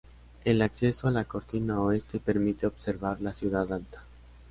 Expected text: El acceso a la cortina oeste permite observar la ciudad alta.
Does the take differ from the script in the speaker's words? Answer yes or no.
no